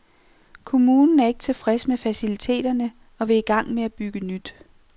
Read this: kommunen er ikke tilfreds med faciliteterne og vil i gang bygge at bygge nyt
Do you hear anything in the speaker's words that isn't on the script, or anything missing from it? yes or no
yes